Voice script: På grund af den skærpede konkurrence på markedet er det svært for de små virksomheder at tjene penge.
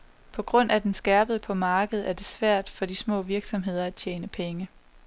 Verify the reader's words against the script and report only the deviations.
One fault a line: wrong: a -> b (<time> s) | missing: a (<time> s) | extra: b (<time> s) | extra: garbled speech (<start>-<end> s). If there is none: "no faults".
missing: konkurrence (1.4 s)